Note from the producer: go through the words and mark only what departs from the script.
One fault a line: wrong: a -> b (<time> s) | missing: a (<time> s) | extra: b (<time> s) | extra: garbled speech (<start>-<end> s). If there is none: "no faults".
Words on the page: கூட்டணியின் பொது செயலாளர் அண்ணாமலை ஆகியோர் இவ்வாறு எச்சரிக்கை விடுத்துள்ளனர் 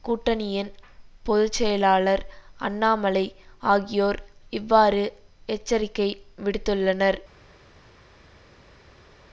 no faults